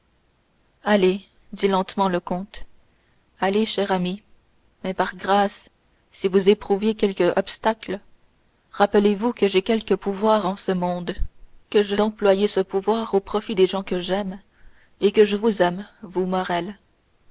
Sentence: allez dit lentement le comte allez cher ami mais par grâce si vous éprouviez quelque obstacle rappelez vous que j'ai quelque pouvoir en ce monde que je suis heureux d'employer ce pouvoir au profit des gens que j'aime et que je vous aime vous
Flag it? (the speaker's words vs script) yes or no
yes